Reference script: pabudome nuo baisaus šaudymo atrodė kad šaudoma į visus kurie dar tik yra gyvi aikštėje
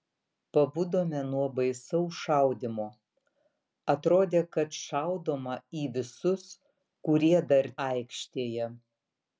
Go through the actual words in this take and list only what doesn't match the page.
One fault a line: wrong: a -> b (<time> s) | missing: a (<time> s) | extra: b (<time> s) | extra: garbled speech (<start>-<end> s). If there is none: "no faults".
missing: tik yra gyvi (7.7 s)